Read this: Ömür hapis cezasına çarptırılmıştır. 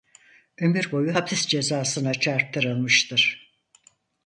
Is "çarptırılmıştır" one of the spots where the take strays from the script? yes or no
no